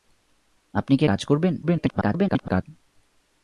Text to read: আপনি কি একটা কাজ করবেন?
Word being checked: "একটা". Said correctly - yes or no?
no